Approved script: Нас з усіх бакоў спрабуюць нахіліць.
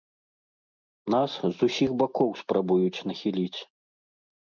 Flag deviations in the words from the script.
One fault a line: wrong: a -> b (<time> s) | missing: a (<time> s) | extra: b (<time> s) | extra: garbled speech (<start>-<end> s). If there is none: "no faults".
no faults